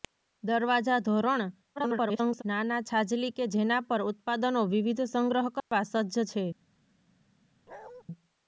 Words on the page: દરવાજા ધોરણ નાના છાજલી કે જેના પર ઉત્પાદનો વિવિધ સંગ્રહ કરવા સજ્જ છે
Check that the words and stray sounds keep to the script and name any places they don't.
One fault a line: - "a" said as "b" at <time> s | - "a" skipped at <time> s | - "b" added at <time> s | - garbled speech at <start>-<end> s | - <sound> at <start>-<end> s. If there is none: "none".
- garbled speech at 1.8-2.4 s
- dropout at 5.6-5.7 s
- bark at 7.7-8.0 s